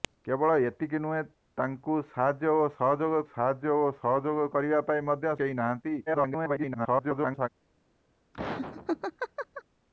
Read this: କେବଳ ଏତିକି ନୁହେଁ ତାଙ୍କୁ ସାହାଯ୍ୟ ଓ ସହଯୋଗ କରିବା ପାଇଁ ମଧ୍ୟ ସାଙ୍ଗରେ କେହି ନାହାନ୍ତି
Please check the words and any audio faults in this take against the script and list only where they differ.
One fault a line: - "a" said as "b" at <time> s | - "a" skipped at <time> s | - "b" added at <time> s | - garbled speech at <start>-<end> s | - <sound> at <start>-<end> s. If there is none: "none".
- "ସାହାଯ୍ୟ ଓ ସହଯୋଗ" added at 3.3 s
- "ସାଙ୍ଗରେ" skipped at 5.4 s
- garbled speech at 6.1-7.5 s
- laugh at 8.3-9.6 s